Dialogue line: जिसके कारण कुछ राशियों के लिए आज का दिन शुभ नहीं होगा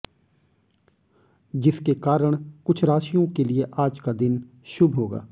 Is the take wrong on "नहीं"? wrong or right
wrong